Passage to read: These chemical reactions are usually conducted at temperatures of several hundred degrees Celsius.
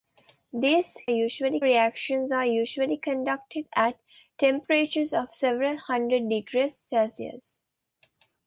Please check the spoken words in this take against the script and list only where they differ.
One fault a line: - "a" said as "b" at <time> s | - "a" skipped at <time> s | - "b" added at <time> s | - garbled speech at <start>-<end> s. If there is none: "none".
- "chemical" said as "usually" at 1.1 s